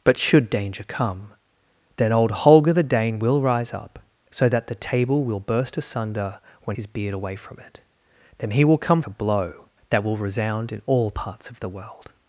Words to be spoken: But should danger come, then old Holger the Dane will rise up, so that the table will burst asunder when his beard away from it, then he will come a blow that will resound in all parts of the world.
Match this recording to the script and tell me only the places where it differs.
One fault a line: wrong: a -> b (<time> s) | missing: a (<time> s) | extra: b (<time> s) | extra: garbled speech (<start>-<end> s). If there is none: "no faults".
no faults